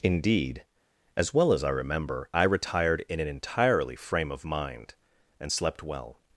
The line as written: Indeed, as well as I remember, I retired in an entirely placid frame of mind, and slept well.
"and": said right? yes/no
yes